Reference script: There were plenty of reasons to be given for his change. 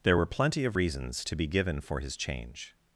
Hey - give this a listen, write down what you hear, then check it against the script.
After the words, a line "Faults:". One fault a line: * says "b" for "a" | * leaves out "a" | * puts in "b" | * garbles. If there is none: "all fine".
There were plenty of reasons to be given for his change.
Faults:
all fine